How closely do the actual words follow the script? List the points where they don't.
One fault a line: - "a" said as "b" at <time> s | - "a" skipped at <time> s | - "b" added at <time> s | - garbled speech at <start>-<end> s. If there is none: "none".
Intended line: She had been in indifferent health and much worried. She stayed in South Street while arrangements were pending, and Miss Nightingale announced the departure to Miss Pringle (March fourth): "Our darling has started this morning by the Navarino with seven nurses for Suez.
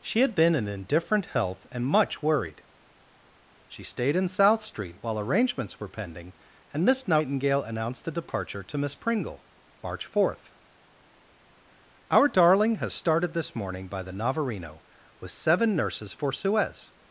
none